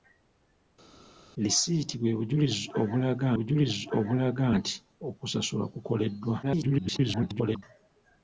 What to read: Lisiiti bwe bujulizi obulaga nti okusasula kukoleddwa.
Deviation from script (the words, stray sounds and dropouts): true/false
true